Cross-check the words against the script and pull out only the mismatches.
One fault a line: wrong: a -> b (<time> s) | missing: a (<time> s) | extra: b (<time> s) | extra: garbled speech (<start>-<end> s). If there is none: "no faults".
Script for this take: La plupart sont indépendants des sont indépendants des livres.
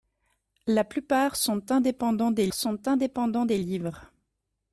no faults